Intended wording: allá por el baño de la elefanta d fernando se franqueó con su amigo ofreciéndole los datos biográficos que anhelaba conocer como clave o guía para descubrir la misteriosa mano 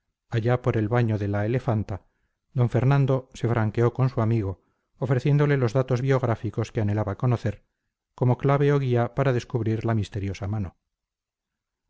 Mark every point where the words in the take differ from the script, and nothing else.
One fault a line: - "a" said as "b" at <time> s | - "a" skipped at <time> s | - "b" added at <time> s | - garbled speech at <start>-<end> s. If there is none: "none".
none